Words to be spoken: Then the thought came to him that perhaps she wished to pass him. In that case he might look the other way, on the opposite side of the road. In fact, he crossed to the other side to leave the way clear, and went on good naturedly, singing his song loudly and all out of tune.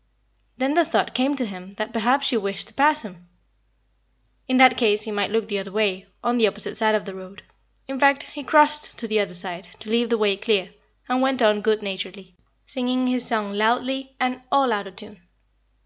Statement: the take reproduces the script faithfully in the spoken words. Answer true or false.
true